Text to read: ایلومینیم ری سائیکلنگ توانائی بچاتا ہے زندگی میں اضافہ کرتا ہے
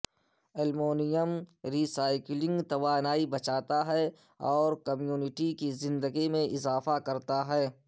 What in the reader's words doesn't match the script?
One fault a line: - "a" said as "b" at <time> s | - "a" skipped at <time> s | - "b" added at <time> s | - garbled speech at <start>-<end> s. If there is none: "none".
- "اور کمیونٹی کی" added at 4.5 s